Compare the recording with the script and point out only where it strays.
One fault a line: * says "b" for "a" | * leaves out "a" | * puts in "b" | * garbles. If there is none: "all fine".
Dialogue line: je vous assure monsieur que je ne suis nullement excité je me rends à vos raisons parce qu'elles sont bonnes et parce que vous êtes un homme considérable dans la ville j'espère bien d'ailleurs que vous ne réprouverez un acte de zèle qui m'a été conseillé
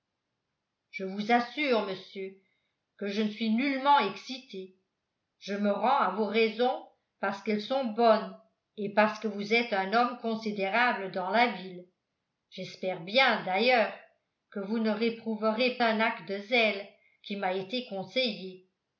all fine